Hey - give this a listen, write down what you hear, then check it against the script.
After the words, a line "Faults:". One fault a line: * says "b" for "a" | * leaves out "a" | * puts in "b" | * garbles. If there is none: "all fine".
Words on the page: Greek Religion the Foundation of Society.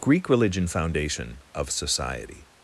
Greek Religion Foundation of Society.
Faults:
* leaves out "the"